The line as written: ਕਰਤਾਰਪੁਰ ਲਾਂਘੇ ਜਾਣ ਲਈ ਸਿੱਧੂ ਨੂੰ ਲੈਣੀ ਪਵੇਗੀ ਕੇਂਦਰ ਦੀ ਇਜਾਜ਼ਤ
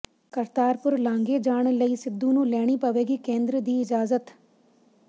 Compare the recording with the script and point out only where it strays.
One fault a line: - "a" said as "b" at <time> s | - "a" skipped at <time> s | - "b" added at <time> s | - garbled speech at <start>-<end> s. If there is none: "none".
none